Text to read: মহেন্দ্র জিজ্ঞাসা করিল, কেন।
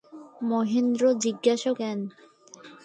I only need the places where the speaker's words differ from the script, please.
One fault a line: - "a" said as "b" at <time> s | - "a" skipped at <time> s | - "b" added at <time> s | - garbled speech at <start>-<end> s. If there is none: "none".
- "করিল" skipped at 1.7 s